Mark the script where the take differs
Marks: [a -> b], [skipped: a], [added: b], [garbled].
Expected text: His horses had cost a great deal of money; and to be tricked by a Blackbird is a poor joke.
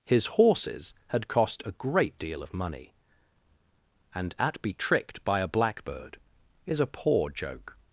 His horses had cost a great deal of money; and [to -> at] be tricked by a Blackbird is a poor joke.